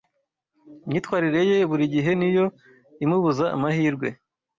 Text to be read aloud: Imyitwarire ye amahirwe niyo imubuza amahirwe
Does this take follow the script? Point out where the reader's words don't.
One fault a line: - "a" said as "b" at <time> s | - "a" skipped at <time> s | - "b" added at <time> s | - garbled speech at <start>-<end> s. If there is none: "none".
- "amahirwe" said as "burigihe" at 1.7 s